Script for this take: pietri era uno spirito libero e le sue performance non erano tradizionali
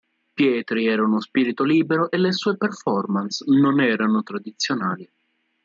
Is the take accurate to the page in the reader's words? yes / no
yes